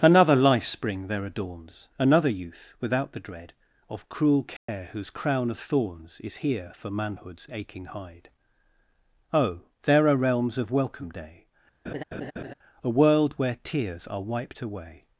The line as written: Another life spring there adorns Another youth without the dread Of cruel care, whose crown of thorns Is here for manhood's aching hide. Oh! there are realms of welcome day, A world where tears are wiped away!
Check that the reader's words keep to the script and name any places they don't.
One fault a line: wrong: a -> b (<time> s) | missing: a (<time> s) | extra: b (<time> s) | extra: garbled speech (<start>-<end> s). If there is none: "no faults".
no faults